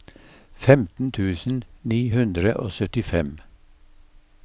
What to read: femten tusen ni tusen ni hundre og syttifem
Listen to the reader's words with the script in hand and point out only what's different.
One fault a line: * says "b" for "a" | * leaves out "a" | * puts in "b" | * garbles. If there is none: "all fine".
* leaves out "tusen ni"